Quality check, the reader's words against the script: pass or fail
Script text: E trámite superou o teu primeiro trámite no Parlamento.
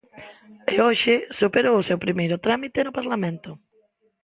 fail